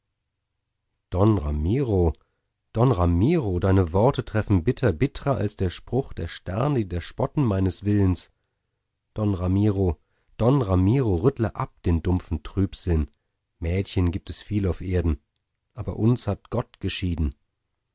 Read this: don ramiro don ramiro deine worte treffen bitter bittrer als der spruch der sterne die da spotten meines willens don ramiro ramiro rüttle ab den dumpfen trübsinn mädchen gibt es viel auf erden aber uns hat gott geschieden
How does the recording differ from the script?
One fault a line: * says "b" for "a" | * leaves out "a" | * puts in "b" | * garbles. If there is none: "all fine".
* puts in "don"